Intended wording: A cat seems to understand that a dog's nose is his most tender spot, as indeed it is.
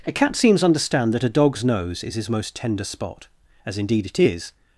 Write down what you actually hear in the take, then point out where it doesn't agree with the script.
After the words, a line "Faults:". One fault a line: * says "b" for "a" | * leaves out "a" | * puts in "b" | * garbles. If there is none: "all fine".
A cat seems understand that a dog's nose is his most tender spot, as indeed it is.
Faults:
* leaves out "to"